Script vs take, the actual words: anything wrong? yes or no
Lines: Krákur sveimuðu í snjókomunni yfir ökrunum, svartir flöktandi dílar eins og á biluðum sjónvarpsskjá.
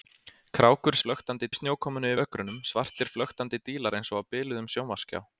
yes